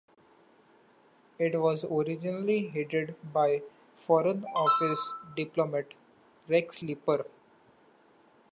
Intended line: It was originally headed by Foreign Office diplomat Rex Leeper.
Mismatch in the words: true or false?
false